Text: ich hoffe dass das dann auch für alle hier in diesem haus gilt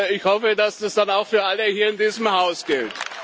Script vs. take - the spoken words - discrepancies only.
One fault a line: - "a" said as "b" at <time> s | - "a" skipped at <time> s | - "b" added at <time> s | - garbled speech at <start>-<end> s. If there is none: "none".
none